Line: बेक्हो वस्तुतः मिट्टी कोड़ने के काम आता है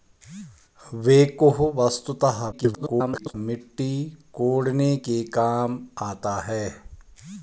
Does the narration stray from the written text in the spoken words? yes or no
yes